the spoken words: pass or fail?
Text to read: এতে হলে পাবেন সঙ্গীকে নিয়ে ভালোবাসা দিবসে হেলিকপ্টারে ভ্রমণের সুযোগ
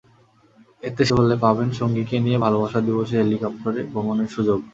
pass